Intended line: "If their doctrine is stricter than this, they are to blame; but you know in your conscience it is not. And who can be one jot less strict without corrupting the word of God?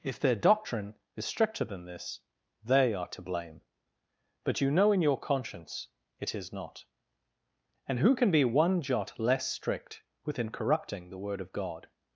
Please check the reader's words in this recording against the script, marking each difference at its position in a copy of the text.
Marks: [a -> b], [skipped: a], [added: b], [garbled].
"If their doctrine is stricter than this, they are to blame; but you know in your conscience it is not. And who can be one jot less strict [without -> within] corrupting the word of God?